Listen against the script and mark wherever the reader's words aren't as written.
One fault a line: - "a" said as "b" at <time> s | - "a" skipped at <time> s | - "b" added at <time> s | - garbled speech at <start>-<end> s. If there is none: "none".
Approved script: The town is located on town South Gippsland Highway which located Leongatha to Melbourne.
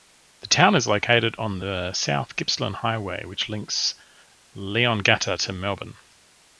- "town" said as "the" at 1.6 s
- "located" said as "links" at 3.5 s